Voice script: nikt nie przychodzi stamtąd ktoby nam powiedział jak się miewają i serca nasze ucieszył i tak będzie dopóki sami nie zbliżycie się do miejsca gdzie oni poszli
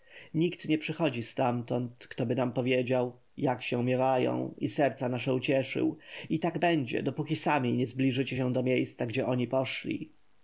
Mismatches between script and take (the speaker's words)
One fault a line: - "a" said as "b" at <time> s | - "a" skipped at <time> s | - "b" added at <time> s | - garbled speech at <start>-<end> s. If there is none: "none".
none